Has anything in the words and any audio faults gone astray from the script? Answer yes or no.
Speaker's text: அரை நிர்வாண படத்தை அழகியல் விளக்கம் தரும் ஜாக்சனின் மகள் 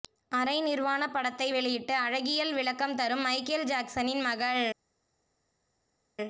yes